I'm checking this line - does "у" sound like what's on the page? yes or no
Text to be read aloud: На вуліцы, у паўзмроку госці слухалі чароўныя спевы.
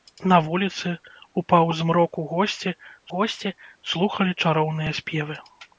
yes